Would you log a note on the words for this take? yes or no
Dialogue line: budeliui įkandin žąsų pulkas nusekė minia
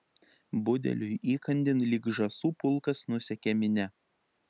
yes